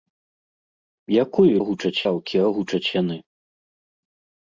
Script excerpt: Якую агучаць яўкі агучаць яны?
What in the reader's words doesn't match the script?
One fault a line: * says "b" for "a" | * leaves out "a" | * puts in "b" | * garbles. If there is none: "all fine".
all fine